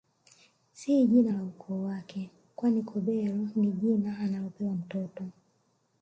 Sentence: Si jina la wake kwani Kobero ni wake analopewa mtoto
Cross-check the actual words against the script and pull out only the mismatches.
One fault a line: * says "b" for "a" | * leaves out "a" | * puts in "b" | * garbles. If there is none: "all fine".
* puts in "ukoo"
* says "jina" for "wake"